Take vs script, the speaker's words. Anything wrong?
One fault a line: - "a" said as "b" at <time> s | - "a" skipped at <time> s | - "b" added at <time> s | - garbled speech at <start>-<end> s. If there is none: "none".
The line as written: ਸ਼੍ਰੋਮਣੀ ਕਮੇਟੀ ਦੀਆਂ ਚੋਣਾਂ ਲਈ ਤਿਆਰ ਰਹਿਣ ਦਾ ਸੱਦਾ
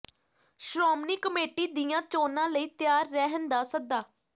none